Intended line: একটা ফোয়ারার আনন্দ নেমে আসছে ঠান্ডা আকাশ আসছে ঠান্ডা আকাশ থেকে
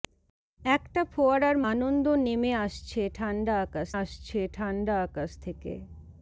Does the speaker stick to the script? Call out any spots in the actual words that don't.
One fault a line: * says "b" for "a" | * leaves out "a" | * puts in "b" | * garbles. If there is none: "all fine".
all fine